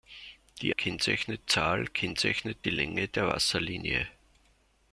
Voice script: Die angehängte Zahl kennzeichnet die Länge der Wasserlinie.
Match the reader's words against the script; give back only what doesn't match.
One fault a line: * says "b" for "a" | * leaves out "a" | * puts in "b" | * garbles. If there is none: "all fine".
* says "kennzeichnet" for "angehängte"